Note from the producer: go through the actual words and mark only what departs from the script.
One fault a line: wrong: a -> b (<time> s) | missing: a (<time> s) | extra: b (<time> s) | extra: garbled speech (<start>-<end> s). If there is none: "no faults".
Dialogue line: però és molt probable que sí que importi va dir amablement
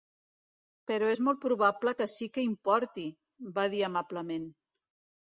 no faults